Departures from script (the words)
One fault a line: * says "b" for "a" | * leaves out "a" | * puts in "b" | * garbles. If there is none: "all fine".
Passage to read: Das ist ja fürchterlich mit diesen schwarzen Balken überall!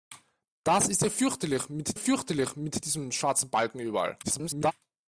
* puts in "fürchterlich mit"
* garbles